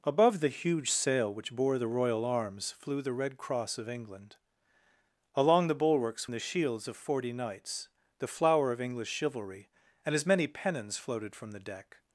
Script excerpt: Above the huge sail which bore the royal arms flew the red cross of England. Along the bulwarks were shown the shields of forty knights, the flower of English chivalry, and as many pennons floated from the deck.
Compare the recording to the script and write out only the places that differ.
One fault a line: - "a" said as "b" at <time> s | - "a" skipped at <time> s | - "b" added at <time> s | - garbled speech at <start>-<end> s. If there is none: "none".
- "were shown" skipped at 6.3 s